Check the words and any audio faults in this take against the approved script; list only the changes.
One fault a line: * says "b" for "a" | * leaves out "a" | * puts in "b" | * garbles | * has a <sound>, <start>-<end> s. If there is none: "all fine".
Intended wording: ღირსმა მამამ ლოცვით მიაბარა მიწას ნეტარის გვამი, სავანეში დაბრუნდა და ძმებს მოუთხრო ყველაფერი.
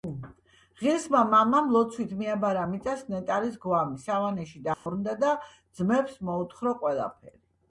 * has a dropout, 4.7-4.9 s